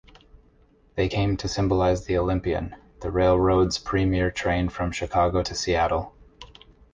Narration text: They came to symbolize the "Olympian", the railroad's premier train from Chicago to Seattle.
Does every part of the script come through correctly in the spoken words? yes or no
yes